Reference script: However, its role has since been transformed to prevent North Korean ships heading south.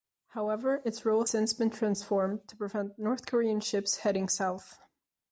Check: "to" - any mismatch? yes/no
no